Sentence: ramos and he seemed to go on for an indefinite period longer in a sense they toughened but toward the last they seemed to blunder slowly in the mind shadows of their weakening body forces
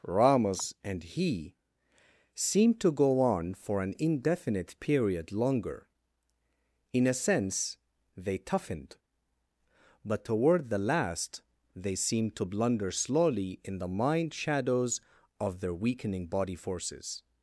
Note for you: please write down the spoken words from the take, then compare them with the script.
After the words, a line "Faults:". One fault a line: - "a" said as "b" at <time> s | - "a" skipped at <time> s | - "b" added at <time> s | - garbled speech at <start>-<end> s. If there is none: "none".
ramos and he seemed to go on for an indefinite period longer in a sense they toughened but toward the last they seemed to blunder slowly in the mind shadows of their weakening body forces
Faults:
none